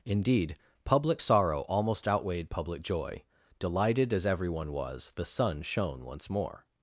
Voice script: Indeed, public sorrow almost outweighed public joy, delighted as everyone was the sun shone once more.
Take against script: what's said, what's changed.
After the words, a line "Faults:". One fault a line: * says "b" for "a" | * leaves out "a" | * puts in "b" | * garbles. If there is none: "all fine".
Indeed, public sorrow almost outweighed public joy, delighted as everyone was the sun shone once more.
Faults:
all fine